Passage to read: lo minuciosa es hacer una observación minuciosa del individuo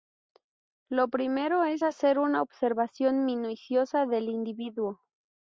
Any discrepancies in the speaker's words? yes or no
yes